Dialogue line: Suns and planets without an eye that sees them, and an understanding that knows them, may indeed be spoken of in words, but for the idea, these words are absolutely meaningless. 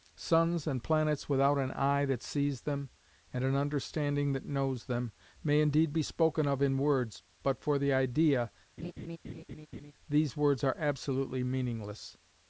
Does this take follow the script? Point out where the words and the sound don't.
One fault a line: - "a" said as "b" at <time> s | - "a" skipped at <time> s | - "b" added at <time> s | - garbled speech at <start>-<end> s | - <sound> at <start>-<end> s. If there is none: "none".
- laugh at 8.8-9.9 s